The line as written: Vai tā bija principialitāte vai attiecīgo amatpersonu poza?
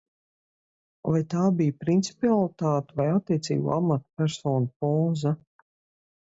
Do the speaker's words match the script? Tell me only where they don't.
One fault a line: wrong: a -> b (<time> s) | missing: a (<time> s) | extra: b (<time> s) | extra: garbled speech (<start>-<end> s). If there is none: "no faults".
no faults